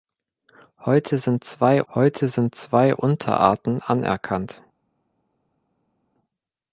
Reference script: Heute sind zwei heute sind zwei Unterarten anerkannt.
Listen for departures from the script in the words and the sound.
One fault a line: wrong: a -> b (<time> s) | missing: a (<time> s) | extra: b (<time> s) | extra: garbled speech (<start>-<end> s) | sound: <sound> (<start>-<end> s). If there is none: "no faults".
no faults